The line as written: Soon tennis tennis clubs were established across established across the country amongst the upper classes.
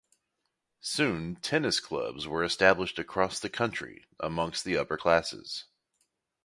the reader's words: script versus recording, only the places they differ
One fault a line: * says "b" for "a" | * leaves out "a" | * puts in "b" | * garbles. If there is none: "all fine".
* leaves out "tennis"
* leaves out "established across"